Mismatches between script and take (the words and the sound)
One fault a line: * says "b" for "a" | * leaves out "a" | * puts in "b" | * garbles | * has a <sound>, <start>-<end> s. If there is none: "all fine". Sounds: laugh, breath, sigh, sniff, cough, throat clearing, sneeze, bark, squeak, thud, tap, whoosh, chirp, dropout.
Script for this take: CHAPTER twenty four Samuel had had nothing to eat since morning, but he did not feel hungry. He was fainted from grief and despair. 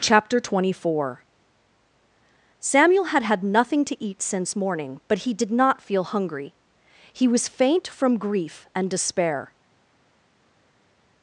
* says "faint" for "fainted"